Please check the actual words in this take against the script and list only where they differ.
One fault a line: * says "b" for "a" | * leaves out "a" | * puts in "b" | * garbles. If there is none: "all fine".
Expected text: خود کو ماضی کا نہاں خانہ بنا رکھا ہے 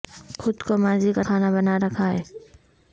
* leaves out "نہاں"